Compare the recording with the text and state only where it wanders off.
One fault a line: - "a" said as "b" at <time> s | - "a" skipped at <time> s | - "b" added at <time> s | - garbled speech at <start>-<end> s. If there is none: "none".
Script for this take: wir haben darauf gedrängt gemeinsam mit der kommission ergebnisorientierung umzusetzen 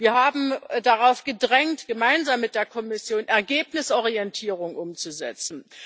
none